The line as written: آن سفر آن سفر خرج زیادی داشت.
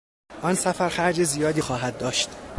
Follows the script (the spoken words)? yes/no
no